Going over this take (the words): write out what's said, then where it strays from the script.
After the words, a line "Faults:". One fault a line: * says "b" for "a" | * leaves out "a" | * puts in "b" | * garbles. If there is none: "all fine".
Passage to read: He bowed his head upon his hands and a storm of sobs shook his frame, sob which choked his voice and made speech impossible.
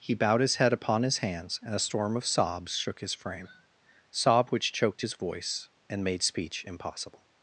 He bowed his head upon his hands and a storm of sobs shook his frame, sob which choked his voice and made speech impossible.
Faults:
all fine